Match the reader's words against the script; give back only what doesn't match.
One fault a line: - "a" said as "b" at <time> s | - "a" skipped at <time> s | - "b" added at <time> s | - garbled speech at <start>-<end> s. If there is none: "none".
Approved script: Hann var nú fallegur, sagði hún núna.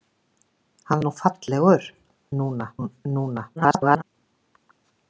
- "var" skipped at 1.0 s
- "sagði" said as "núna" at 2.4 s
- garbled speech at 3.6-4.0 s